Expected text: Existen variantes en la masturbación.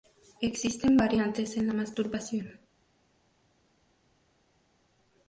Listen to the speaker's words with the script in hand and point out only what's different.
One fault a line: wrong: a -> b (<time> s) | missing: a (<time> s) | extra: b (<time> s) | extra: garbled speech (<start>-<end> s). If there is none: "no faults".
no faults